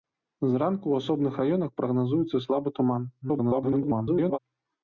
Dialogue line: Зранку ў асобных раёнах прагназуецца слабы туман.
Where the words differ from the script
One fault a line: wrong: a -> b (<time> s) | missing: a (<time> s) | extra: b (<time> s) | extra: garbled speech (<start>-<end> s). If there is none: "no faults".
extra: garbled speech (3.2-4.4 s)